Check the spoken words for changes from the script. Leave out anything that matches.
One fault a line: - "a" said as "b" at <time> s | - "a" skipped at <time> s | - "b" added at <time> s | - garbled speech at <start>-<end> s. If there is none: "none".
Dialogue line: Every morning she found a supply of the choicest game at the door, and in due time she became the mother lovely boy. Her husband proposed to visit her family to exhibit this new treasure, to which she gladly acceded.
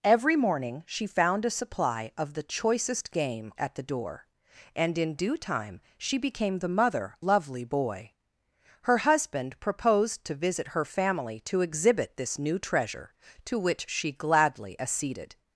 none